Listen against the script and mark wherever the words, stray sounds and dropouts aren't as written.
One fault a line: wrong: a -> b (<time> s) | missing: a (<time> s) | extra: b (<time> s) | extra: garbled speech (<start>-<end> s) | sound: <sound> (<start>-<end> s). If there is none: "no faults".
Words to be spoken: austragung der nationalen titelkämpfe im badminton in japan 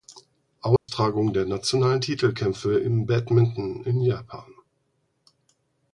sound: dropout (0.8-0.9 s)